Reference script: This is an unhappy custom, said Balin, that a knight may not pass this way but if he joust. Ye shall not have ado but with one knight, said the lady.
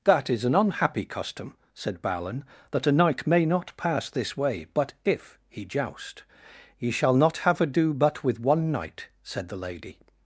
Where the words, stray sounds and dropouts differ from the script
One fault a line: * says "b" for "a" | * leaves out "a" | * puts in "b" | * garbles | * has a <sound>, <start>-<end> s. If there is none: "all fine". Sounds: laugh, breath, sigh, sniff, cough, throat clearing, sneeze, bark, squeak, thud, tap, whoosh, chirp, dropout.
* says "That" for "This"